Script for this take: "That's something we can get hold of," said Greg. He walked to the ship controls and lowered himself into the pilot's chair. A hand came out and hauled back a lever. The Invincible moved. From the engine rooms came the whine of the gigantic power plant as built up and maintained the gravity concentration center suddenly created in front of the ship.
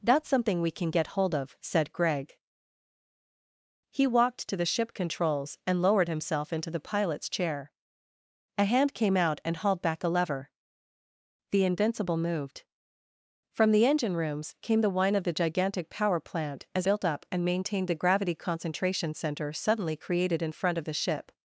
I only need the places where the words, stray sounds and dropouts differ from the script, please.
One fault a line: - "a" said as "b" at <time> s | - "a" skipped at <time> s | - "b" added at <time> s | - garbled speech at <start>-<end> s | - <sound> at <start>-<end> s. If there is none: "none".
none